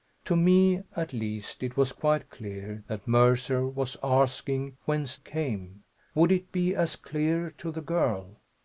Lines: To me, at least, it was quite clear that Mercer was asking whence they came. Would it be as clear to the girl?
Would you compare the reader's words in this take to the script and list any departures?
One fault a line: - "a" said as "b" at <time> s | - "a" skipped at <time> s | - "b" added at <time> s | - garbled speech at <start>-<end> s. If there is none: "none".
- "they" skipped at 5.2 s